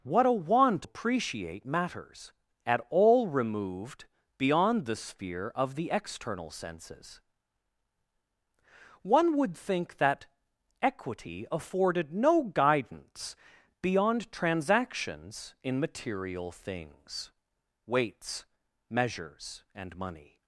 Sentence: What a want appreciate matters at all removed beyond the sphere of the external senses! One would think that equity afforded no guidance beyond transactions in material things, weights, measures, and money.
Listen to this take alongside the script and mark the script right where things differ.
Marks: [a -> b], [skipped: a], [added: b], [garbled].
What a want appreciate matters at all removed beyond the sphere of the external senses! One would think that equity afforded no guidance beyond transactions in material things, weights, measures, and money.